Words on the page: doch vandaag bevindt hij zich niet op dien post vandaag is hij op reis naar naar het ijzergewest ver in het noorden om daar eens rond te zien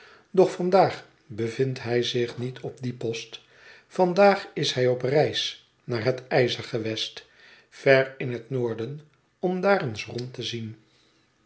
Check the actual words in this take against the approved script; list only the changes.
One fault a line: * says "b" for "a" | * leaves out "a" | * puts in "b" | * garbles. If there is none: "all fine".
* leaves out "naar"